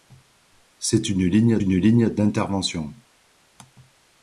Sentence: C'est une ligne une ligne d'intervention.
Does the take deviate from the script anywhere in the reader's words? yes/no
no